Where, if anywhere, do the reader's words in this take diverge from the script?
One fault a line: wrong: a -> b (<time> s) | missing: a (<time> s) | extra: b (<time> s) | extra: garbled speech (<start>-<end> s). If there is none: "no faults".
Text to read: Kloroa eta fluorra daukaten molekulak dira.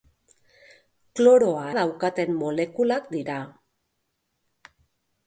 missing: eta fluorra (1.6 s)